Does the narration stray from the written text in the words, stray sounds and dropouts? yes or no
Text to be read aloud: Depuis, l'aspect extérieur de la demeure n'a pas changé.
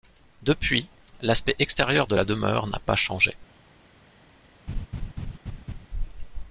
yes